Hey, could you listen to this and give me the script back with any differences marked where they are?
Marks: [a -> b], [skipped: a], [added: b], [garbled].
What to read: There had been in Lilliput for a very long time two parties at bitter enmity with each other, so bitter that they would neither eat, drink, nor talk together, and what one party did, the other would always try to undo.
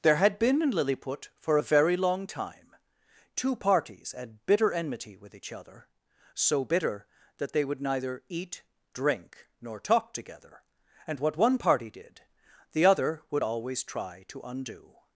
There had been in Lilliput for a very long time two parties at bitter enmity with each other, so bitter that they would neither eat, drink, nor talk together, and what one party did, the other would always try to undo.